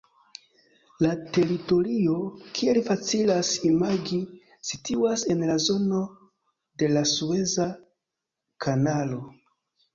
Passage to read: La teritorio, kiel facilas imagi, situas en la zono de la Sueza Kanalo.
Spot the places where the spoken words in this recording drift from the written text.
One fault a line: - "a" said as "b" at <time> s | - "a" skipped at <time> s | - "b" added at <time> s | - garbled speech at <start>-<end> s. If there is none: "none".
none